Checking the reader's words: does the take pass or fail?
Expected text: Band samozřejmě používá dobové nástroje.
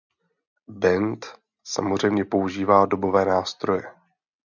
pass